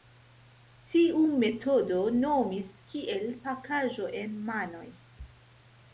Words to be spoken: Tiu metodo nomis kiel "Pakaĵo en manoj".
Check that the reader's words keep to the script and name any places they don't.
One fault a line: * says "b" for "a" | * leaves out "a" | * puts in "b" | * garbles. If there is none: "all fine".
all fine